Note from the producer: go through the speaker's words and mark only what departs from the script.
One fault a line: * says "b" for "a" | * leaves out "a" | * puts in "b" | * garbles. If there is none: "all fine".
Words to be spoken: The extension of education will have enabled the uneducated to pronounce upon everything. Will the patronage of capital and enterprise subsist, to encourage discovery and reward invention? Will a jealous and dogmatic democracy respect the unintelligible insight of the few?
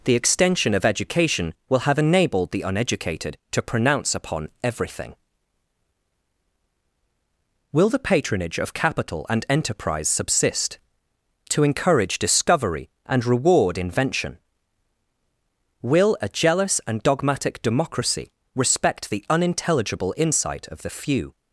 all fine